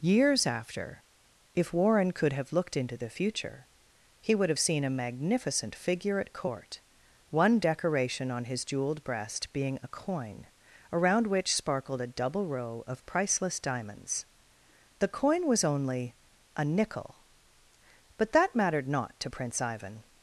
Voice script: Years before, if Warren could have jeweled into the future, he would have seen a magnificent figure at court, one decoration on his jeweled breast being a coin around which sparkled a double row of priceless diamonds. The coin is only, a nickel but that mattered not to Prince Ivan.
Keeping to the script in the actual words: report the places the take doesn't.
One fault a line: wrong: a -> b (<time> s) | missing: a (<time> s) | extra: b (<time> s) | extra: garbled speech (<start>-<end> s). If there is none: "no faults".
wrong: before -> after (0.5 s)
wrong: jeweled -> looked (2.5 s)
wrong: is -> was (15.5 s)